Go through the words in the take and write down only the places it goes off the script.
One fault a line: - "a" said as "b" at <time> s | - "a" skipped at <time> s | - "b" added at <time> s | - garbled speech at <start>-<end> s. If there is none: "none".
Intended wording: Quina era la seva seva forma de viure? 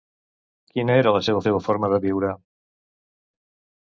none